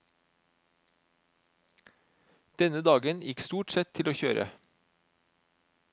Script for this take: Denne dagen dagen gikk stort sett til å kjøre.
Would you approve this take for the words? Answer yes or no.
no